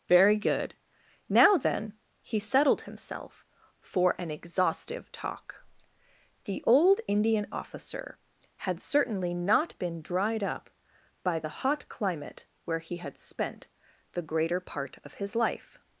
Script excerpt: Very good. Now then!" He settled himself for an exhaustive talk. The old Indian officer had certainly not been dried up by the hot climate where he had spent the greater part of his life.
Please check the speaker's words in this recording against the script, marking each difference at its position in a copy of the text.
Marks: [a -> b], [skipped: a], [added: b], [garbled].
Very good. Now then!" He settled himself for an exhaustive talk. The old Indian officer had certainly not been dried up by the hot climate where he had spent the greater part of his life.